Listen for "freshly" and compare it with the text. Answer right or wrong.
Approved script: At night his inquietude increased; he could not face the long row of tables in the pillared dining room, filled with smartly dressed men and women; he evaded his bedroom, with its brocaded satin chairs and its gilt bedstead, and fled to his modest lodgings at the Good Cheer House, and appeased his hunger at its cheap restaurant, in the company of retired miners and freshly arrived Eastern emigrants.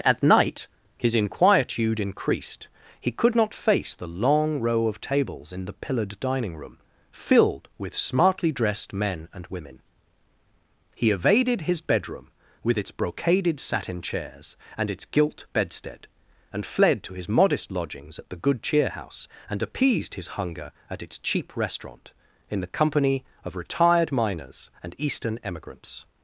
wrong